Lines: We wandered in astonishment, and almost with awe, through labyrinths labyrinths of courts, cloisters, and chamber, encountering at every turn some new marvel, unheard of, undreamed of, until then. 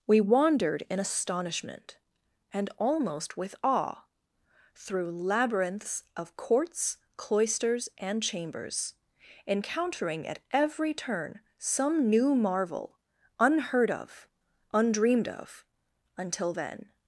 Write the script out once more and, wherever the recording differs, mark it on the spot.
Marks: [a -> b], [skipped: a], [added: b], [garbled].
We wandered in astonishment, and almost with awe, through labyrinths [skipped: labyrinths] of courts, cloisters, and [chamber, -> chambers] encountering at every turn some new marvel, unheard of, undreamed of, until then.